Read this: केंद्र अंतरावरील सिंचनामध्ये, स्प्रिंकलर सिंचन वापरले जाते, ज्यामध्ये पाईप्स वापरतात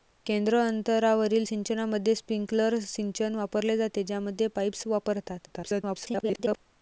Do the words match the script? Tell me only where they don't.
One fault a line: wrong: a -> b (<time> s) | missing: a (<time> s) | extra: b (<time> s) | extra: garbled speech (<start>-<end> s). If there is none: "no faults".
extra: garbled speech (5.5-6.6 s)